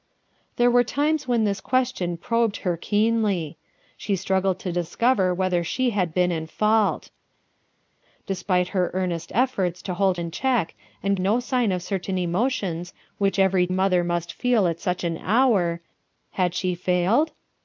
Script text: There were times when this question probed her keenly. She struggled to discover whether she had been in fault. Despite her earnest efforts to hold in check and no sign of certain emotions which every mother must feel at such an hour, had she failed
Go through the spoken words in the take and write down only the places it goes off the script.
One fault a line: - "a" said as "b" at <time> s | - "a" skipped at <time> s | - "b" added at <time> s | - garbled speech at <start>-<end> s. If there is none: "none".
none